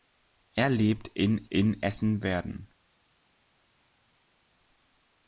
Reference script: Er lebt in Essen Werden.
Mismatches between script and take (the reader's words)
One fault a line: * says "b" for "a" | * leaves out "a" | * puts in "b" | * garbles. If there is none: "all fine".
* puts in "in"